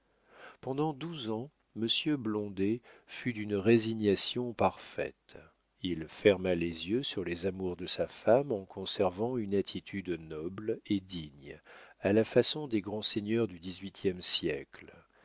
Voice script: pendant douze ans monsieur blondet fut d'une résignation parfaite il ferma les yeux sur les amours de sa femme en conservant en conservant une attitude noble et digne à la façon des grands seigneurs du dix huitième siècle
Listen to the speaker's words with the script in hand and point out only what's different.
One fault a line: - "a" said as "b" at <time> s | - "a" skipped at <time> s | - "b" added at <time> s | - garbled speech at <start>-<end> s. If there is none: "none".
- "en conservant" skipped at 9.4 s